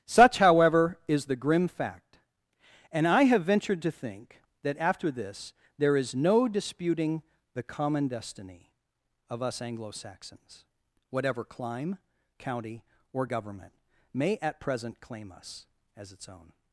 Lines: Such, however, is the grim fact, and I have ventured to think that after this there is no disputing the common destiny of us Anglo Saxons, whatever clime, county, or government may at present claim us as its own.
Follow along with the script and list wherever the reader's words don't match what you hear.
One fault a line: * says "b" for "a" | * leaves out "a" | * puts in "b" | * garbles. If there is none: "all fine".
all fine